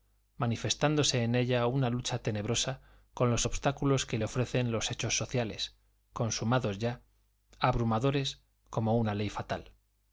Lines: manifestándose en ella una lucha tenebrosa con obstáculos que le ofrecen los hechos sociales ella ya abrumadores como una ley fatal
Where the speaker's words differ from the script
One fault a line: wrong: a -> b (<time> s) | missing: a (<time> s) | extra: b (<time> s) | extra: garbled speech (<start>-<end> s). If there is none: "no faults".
extra: los (3.3 s)
wrong: ella -> consumados (6.1 s)